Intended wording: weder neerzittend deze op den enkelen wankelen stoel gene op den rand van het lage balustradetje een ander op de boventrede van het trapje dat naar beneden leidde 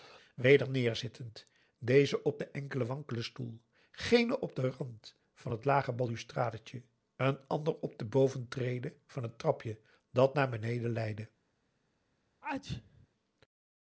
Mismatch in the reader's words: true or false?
false